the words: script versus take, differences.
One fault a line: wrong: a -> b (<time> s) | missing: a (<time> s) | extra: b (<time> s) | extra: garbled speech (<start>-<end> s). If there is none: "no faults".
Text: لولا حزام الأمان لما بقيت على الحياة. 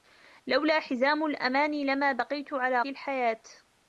no faults